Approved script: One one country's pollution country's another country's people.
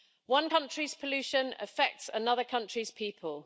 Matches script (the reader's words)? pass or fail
fail